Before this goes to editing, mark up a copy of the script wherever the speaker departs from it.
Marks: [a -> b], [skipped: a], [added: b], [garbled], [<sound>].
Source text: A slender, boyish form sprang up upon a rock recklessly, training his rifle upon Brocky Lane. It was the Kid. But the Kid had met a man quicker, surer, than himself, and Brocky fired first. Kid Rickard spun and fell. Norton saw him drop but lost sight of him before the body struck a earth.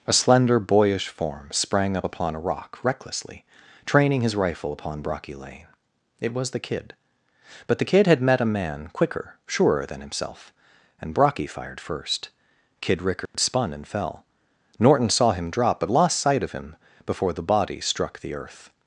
A slender, boyish form sprang up upon a rock recklessly, training his rifle upon Brocky Lane. It was the Kid. But the Kid had met a man quicker, surer, than himself, and Brocky fired first. Kid Rickard [dropout] spun and fell. Norton saw him drop but lost sight of him before the body struck [a -> the] earth.